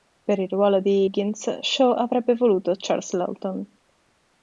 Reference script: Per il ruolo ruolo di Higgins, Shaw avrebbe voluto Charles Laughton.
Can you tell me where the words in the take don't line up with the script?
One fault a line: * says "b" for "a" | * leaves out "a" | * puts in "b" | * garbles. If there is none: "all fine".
* leaves out "ruolo"